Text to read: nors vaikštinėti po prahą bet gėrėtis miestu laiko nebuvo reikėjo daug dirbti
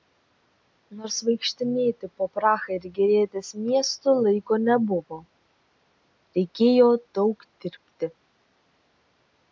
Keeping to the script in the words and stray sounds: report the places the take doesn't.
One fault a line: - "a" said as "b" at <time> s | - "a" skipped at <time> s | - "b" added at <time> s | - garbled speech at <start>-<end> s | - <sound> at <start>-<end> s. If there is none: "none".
- "bet" said as "ir" at 2.8 s